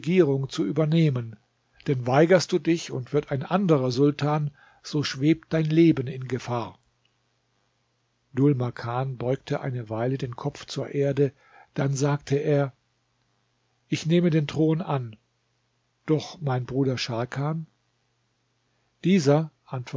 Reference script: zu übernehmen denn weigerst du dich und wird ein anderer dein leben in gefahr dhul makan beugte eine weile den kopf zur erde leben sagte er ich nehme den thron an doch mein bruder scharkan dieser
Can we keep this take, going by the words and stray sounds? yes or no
no